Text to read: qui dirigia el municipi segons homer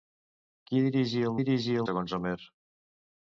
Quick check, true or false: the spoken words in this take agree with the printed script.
false